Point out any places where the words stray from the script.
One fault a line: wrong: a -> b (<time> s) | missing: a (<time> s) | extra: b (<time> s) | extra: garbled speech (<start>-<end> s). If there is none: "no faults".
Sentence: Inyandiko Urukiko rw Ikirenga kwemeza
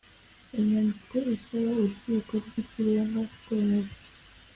extra: isaba (1.4 s)